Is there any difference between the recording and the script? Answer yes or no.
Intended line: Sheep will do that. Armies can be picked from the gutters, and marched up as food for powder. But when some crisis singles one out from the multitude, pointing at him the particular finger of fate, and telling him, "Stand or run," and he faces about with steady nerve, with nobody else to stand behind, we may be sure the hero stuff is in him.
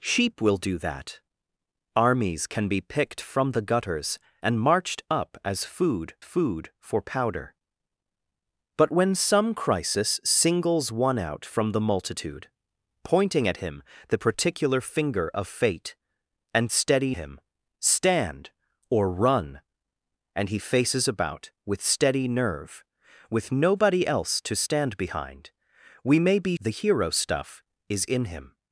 yes